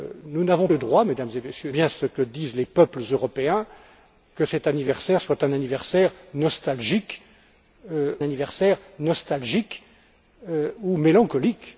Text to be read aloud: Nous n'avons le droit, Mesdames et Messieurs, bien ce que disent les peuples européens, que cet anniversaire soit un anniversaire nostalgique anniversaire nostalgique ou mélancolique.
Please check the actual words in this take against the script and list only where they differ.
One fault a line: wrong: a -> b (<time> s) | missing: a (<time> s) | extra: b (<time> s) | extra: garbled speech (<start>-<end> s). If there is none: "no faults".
no faults